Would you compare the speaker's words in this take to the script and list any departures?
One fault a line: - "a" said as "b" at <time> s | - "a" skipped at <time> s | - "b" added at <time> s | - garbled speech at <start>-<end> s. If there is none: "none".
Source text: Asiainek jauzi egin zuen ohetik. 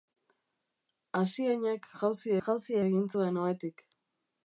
- "jauzi" added at 2.5 s